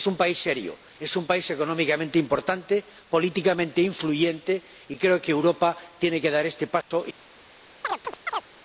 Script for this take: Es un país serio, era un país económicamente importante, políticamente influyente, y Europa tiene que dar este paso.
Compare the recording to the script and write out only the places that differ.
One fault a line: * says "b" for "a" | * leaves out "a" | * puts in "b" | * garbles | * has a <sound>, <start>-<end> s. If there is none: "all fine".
* says "es" for "era"
* puts in "creo que"
* has a dropout, 6.8-6.9 s
* has a chirp, 7.8-8.5 s